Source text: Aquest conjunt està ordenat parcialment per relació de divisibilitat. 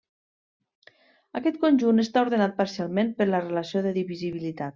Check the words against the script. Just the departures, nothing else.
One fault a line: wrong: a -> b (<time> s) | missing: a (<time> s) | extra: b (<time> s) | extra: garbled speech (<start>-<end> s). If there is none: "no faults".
extra: la (3.3 s)